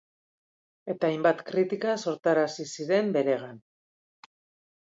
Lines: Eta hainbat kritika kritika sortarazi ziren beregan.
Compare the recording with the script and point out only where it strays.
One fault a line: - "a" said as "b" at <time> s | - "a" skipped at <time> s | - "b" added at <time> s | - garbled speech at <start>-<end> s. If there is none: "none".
- "kritika" skipped at 1.9 s